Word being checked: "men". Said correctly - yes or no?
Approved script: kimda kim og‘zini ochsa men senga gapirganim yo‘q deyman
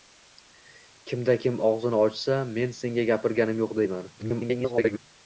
yes